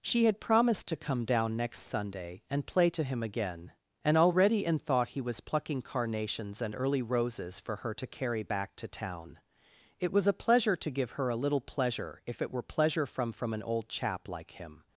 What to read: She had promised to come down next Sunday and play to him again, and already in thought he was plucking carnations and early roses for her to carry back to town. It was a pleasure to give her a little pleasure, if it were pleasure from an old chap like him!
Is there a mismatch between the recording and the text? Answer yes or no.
yes